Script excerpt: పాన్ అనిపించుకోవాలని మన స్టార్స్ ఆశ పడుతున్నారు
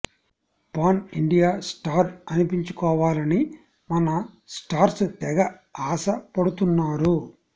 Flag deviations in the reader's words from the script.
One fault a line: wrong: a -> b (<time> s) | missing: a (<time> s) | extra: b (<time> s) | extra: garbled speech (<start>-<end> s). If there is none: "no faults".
extra: ఇండియా స్టార్ (1.1 s)
extra: తెగ (5.2 s)